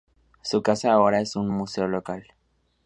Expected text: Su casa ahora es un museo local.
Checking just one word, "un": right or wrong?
right